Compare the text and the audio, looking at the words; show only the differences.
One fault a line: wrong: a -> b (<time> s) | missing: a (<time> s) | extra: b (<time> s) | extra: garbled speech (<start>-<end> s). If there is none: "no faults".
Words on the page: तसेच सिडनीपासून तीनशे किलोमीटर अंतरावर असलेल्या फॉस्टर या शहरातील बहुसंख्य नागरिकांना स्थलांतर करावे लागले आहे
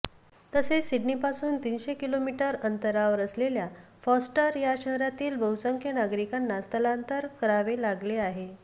no faults